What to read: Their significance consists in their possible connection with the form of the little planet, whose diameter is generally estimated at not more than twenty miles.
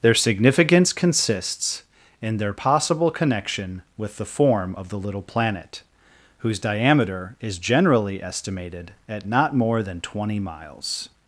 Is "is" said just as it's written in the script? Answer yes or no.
yes